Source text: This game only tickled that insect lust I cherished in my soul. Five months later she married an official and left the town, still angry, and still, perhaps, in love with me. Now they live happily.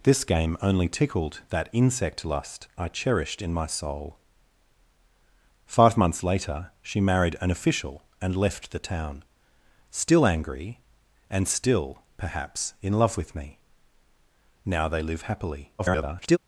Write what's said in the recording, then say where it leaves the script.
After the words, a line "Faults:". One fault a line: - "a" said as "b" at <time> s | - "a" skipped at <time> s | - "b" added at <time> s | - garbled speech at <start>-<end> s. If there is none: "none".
This game only tickled that insect lust I cherished in my soul. Five months later she married an official and left the town, still angry, and still, perhaps, in love with me. Now they live happily. [garbled]
Faults:
- garbled speech at 15.8-16.4 s